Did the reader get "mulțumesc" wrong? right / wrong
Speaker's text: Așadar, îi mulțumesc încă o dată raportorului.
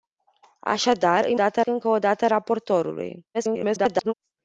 wrong